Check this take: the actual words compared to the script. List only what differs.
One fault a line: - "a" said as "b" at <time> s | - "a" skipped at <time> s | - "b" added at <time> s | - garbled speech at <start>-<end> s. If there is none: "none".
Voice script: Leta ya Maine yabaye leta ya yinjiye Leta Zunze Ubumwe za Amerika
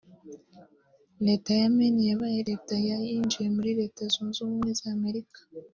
- "muri" added at 3.5 s